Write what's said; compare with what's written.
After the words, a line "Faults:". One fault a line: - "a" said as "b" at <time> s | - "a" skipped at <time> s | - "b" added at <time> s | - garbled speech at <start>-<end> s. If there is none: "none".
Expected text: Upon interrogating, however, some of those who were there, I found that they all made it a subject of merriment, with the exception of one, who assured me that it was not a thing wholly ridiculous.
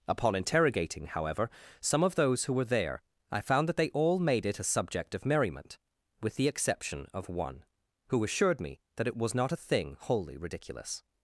Upon interrogating, however, some of those who were there, I found that they all made it a subject of merriment, with the exception of one, who assured me that it was not a thing wholly ridiculous.
Faults:
none